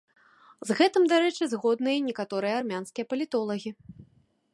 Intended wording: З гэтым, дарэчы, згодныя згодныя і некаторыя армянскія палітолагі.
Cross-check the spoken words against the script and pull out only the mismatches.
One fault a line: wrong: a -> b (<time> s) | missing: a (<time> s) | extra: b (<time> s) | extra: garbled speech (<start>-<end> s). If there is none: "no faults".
missing: згодныя (1.9 s)